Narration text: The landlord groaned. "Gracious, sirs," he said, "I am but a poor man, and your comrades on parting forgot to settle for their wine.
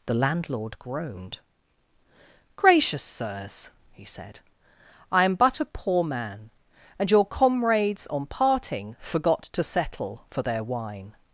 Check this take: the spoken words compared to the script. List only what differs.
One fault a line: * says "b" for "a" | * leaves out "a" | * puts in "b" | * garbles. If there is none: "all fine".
all fine